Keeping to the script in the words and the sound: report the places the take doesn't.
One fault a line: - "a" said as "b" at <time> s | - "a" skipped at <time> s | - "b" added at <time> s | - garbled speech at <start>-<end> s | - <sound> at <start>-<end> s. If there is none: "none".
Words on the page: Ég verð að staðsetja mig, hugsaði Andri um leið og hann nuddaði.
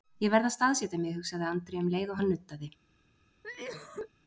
- cough at 3.4-4.1 s